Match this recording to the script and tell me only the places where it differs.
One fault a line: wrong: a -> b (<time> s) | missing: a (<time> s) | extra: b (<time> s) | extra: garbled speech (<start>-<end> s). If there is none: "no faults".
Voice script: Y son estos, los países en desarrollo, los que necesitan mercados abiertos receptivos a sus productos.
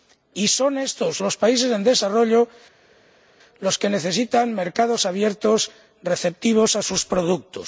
no faults